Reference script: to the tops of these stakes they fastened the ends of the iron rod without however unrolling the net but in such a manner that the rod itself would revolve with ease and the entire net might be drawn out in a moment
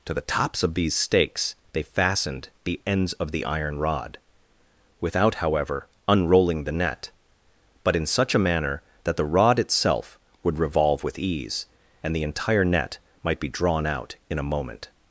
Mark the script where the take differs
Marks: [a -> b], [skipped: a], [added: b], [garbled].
to the tops of these stakes they fastened the ends of the iron rod without however unrolling the net but in such a manner that the rod itself would revolve with ease and the entire net might be drawn out in a moment